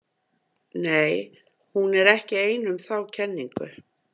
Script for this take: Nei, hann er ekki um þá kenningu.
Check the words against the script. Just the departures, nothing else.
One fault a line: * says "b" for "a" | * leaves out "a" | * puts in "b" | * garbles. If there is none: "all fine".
* says "hún" for "hann"
* puts in "ein"